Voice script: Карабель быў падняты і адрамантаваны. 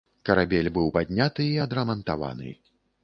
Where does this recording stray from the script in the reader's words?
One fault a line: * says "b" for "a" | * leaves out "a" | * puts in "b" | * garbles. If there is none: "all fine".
all fine